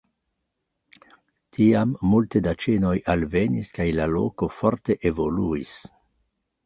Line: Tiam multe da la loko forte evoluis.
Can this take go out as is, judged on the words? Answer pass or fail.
fail